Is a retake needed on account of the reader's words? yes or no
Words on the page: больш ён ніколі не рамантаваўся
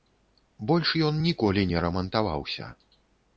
no